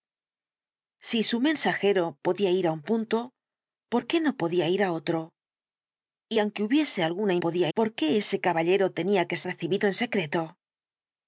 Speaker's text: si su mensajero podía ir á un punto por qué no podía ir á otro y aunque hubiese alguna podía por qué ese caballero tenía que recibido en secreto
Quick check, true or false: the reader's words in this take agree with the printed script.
true